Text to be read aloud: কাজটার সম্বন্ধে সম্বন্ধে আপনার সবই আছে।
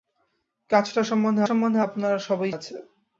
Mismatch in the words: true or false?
false